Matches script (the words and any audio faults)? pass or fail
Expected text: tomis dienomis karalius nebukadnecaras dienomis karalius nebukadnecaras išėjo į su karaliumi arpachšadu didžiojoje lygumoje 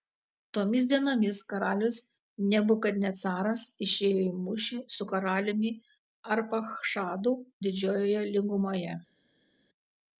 fail